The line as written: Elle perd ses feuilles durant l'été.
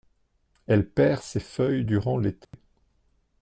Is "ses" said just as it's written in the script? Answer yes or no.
yes